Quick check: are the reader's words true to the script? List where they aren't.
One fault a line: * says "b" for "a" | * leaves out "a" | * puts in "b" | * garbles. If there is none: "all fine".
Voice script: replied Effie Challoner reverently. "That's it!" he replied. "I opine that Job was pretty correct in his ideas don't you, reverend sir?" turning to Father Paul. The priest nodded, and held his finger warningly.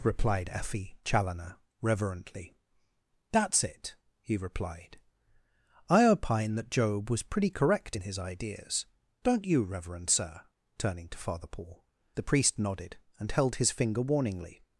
all fine